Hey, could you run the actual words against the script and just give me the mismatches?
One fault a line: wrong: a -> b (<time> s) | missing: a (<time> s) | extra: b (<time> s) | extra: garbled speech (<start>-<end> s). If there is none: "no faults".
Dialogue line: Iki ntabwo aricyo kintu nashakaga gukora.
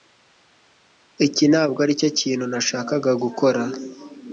no faults